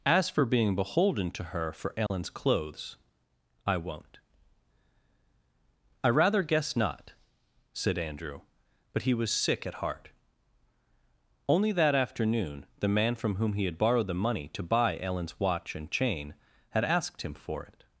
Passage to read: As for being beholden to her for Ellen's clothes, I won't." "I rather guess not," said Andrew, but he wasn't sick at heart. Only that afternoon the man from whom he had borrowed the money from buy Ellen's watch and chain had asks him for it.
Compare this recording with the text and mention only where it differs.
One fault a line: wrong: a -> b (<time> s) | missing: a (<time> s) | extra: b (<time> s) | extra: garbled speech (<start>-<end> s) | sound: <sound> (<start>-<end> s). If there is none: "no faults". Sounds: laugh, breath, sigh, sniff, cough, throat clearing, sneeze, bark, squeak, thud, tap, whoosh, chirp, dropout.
sound: dropout (2.1-2.1 s)
wrong: wasn't -> was (9.1 s)
wrong: from -> to (14.5 s)
wrong: asks -> asked (16.8 s)